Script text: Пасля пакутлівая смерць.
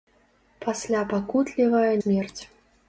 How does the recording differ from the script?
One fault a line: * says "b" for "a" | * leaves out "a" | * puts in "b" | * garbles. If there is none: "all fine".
all fine